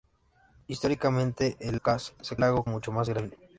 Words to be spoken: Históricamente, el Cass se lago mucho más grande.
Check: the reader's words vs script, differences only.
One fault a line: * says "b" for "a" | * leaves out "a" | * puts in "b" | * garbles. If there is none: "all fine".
all fine